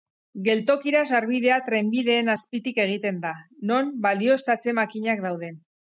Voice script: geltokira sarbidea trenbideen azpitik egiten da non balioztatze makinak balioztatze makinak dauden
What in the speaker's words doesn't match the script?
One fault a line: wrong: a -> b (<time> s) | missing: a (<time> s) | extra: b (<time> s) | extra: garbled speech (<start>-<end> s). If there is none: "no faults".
missing: balioztatze makinak (5.3 s)